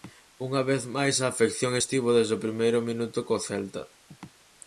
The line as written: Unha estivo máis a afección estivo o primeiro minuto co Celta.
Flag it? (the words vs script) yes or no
yes